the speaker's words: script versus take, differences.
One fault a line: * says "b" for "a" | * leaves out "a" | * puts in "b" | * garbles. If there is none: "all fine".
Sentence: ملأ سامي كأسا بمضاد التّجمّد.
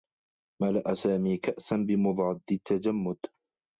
all fine